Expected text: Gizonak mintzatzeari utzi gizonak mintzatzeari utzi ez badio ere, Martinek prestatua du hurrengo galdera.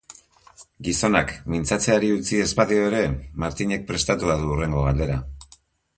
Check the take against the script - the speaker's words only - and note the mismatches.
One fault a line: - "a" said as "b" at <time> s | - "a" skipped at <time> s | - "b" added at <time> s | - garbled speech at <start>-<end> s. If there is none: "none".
- "gizonak mintzatzeari utzi" skipped at 2.4 s